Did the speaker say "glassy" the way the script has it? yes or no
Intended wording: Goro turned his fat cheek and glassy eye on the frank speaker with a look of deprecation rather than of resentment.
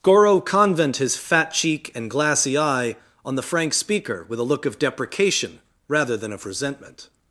yes